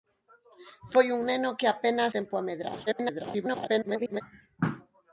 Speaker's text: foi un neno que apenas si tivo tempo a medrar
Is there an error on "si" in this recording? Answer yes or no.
yes